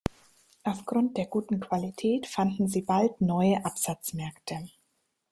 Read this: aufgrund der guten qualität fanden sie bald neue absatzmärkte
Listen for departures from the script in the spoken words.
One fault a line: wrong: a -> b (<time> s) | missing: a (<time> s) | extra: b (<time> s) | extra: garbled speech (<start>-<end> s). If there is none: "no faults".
no faults